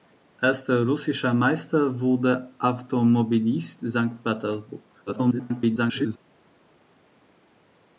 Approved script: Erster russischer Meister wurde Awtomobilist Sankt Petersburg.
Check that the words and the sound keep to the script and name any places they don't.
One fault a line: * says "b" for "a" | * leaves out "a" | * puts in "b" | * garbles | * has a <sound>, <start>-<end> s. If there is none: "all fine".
* garbles